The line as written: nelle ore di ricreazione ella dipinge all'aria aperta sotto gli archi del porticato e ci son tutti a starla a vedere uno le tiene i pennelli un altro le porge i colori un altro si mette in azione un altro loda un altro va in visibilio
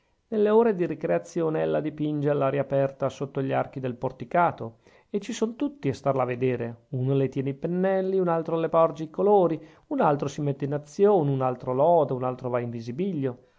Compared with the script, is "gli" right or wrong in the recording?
right